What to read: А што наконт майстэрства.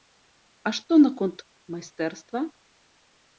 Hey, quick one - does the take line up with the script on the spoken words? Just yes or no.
yes